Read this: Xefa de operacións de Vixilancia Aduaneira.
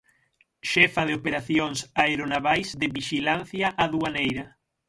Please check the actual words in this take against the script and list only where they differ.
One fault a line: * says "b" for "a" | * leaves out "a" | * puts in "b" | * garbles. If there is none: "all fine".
* puts in "aeronavais"